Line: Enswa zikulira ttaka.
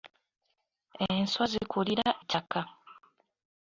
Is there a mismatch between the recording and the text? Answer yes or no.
no